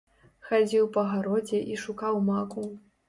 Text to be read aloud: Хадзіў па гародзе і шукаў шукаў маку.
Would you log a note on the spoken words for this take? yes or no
yes